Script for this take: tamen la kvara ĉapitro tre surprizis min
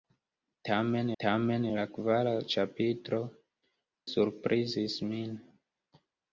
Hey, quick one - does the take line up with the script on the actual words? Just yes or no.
no